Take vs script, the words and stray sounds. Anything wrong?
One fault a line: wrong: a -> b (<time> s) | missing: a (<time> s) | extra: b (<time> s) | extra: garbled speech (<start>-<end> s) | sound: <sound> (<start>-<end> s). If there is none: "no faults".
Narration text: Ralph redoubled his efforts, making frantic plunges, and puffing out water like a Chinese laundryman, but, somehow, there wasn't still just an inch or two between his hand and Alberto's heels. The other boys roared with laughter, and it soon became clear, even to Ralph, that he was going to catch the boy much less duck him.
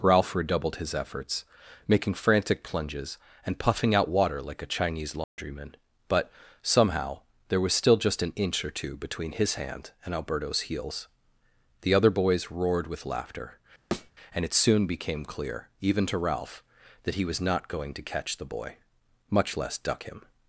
sound: dropout (5.2-5.4 s)
wrong: wasn't -> was (7.6 s)
sound: thud (13.9-14.1 s)
extra: not (17.4 s)